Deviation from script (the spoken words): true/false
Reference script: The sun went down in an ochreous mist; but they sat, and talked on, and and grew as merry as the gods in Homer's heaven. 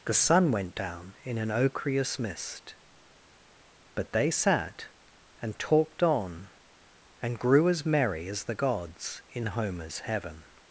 true